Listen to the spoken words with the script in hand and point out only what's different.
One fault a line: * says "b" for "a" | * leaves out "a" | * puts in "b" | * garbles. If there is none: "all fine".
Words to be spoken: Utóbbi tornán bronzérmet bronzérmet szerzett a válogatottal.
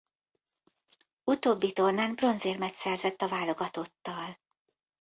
* leaves out "bronzérmet"